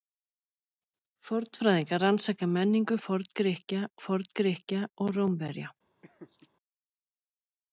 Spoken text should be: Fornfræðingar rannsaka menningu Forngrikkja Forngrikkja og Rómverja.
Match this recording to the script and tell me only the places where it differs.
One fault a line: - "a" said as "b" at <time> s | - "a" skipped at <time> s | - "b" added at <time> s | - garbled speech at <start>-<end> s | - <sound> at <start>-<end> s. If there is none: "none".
- laugh at 6.0-6.5 s